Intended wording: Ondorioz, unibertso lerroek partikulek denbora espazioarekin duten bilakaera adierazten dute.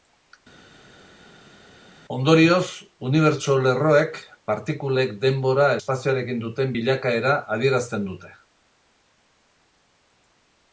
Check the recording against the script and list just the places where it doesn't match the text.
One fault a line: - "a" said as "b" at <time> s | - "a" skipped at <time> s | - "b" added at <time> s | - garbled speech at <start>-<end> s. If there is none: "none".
none